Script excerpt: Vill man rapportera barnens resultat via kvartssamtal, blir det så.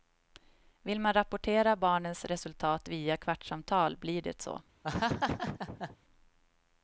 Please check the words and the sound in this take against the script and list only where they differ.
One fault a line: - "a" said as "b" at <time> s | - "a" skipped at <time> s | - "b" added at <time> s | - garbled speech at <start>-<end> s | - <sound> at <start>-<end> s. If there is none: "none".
- laugh at 4.8-6.0 s